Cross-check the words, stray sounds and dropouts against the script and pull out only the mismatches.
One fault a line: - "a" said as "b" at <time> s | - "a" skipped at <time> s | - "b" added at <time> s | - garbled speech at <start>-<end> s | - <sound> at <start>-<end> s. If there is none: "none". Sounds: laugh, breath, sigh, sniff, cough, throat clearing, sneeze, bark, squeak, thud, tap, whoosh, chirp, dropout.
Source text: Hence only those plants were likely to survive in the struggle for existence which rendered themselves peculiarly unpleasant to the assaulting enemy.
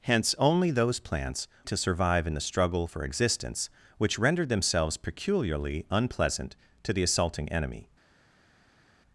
- "were likely" skipped at 1.5 s